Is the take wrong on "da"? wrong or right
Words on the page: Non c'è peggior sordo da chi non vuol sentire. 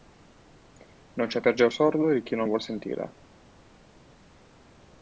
wrong